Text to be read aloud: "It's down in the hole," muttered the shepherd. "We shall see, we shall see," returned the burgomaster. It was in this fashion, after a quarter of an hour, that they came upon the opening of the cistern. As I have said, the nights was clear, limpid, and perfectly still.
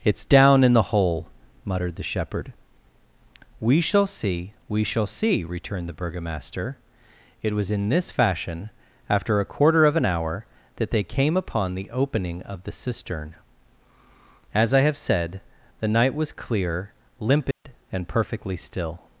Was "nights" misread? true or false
true